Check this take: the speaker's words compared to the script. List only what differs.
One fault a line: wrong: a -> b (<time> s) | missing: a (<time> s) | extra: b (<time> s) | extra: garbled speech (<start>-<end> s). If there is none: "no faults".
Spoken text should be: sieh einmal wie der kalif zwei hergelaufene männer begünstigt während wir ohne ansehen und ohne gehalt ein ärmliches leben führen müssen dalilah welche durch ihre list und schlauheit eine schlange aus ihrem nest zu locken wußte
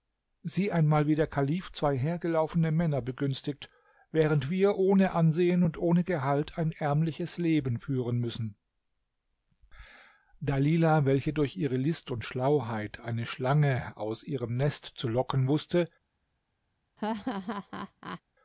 no faults